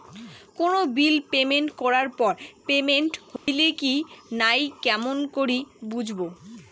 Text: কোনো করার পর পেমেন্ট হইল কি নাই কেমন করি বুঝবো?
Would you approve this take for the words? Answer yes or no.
no